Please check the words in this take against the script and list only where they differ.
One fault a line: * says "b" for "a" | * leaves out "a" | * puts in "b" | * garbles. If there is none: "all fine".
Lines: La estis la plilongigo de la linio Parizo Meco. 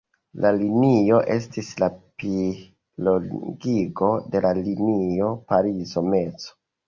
* puts in "linio"